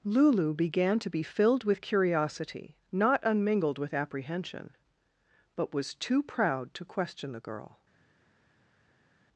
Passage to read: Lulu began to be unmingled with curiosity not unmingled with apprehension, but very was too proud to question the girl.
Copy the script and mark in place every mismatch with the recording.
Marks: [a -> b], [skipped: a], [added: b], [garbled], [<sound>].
Lulu began to be [unmingled -> filled] with curiosity not unmingled with apprehension, but [skipped: very] was too proud to question the girl.